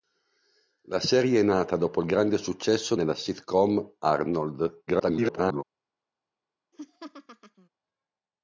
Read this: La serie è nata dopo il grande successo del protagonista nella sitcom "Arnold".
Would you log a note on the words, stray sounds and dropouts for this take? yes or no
yes